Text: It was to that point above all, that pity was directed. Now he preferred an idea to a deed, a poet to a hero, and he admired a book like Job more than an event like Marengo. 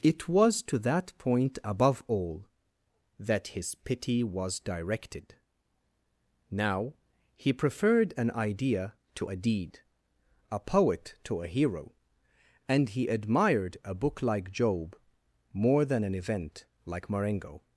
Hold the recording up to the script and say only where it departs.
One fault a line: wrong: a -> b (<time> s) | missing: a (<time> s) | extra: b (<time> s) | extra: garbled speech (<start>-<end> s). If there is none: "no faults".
extra: his (3.5 s)